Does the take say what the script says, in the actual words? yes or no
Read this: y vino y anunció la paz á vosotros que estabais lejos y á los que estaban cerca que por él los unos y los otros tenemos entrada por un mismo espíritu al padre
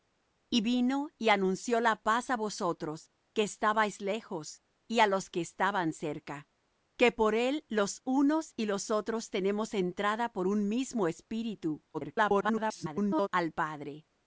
no